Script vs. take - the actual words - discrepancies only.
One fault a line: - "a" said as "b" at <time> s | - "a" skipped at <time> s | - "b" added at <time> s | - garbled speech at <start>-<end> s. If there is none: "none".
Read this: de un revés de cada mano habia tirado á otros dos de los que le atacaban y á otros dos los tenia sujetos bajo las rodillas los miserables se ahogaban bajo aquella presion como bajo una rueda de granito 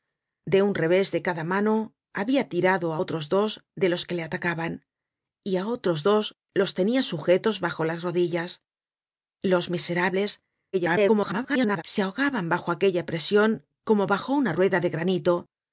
- garbled speech at 10.7-11.8 s